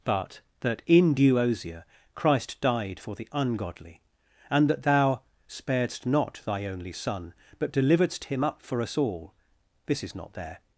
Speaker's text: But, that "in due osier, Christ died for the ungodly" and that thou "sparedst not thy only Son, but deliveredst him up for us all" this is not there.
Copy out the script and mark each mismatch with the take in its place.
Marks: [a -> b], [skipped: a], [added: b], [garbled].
But, that "in due osier, Christ died for the ungodly" and that thou "sparedst not thy only Son, but deliveredst him up for us all" this is not there.